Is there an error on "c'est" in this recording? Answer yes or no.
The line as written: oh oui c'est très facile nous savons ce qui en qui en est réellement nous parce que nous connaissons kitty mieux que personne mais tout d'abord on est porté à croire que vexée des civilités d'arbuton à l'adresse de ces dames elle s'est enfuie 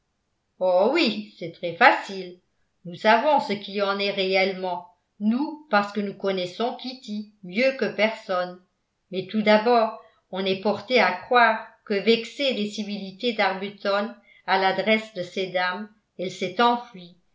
no